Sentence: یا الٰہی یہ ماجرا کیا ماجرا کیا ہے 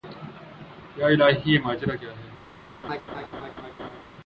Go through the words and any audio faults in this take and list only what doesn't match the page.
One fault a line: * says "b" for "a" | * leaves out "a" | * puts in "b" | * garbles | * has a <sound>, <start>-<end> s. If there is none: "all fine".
* leaves out "ماجرا کیا"
* has a laugh, 2.8-4.0 s